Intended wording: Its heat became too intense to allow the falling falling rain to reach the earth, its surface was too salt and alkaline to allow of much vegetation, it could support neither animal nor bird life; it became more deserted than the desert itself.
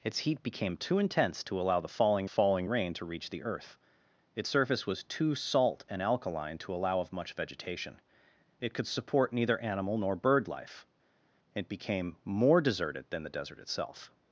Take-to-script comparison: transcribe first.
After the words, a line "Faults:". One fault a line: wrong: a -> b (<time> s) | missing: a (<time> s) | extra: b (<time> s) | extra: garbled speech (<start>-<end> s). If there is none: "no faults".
Its heat became too intense to allow the falling falling rain to reach the earth, its surface was too salt and alkaline to allow of much vegetation, it could support neither animal nor bird life; it became more deserted than the desert itself.
Faults:
no faults